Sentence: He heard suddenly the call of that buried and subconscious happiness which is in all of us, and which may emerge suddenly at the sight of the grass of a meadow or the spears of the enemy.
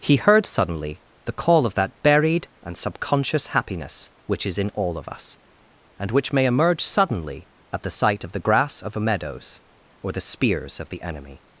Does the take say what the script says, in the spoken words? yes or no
no